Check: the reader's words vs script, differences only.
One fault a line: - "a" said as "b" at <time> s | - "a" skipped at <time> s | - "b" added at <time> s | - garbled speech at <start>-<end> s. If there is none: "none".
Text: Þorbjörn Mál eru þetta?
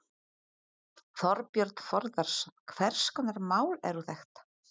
- "Þórðarson Hvers konar" added at 1.9 s